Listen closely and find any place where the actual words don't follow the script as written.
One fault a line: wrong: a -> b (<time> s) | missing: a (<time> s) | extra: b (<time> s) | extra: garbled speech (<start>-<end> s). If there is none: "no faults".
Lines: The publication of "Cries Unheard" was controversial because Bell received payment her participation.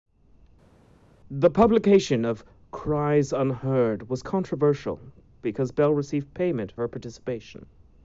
no faults